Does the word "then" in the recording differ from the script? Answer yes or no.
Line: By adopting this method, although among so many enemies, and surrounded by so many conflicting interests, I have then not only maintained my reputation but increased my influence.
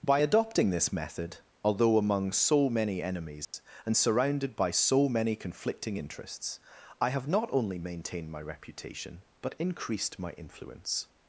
yes